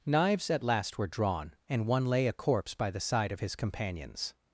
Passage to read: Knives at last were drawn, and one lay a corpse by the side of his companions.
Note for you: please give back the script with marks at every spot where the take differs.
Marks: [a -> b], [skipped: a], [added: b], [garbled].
Knives at last were drawn, and one lay a corpse by the side of his companions.